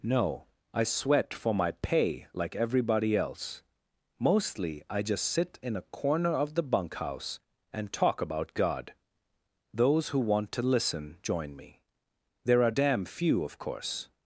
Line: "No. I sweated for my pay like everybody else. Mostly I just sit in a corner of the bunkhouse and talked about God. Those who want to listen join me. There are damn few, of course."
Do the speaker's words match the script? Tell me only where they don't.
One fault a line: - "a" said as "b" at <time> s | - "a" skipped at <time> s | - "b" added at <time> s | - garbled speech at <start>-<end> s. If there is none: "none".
- "sweated" said as "sweat" at 0.8 s
- "talked" said as "talk" at 7.9 s